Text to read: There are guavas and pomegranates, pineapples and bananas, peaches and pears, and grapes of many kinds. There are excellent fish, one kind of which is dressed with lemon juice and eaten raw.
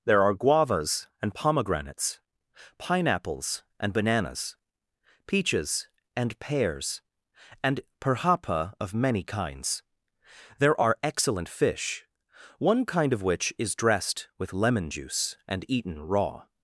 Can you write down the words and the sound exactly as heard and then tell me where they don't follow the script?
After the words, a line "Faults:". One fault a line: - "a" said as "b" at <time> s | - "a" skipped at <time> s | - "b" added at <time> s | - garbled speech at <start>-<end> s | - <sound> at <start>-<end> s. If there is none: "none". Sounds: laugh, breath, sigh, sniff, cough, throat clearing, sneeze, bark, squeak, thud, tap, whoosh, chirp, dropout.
There are guavas and pomegranates, pineapples and bananas, peaches and pears, and perhapa of many kinds. There are excellent fish, one kind of which is dressed with lemon juice and eaten raw.
Faults:
- "grapes" said as "perhapa" at 8.0 s